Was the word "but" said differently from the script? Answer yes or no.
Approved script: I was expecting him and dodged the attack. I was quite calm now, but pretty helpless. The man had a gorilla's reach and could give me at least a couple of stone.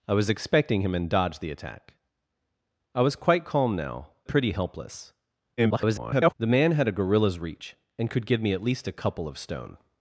yes